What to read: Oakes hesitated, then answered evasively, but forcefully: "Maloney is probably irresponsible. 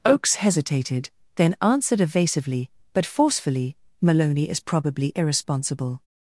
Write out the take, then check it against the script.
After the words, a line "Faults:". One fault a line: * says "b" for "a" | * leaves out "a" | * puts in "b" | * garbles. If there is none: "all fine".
Oakes hesitated, then answered evasively, but forcefully: "Maloney is probably irresponsible.
Faults:
all fine